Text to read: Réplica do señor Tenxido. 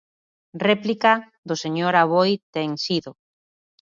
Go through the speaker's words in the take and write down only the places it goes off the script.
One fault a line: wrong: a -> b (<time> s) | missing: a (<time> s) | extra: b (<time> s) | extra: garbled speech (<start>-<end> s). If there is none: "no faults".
extra: Aboi (2.0 s)